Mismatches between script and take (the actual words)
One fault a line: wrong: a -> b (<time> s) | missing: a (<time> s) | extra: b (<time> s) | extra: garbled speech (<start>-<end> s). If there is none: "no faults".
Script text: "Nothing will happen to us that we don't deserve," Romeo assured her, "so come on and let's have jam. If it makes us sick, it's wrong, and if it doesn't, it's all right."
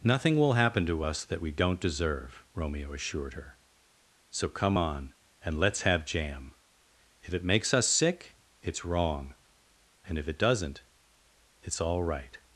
no faults